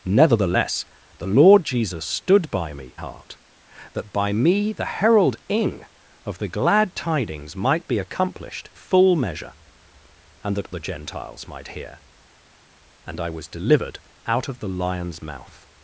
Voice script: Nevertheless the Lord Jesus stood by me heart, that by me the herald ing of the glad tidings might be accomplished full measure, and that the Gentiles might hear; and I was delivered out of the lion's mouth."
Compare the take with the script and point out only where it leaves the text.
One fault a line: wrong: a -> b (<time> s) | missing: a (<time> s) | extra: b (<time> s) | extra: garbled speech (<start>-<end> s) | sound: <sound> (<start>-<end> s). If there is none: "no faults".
no faults